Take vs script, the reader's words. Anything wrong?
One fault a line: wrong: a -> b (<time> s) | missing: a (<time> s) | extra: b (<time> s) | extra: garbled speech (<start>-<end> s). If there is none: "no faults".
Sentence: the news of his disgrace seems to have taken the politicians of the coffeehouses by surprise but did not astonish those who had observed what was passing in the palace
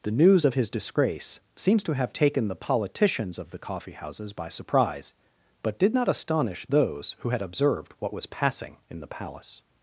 no faults